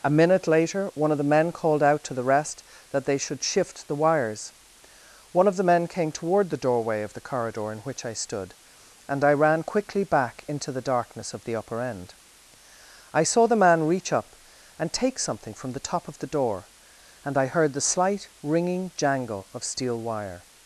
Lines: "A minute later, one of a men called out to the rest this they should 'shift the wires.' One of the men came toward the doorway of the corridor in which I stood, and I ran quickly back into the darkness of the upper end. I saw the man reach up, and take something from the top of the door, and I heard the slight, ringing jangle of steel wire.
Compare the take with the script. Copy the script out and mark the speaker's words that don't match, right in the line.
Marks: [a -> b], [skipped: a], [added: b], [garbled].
"A minute later, one of [a -> the] men called out to the rest [this -> that] they should 'shift the wires.' One of the men came toward the doorway of the corridor in which I stood, and I ran quickly back into the darkness of the upper end. I saw the man reach up, and take something from the top of the door, and I heard the slight, ringing jangle of steel wire.